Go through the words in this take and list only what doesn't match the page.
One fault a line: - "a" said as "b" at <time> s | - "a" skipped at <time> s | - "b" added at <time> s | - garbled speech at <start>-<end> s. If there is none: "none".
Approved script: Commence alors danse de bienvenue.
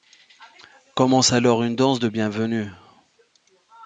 - "une" added at 1.6 s